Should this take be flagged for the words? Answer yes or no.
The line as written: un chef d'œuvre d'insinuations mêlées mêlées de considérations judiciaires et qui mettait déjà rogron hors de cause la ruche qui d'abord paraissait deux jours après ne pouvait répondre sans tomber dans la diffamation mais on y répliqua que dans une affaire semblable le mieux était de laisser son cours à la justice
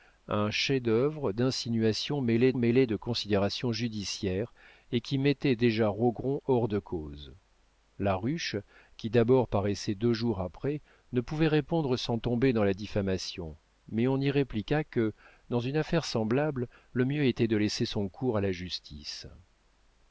no